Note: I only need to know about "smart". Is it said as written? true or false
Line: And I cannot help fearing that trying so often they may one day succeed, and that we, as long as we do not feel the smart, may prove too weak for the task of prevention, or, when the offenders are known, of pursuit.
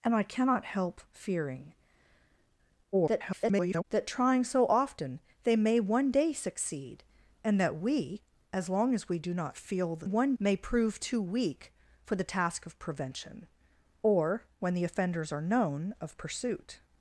false